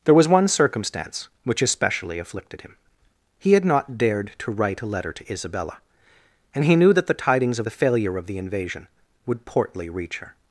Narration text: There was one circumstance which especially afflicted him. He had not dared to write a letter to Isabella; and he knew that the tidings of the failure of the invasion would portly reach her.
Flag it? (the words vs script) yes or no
no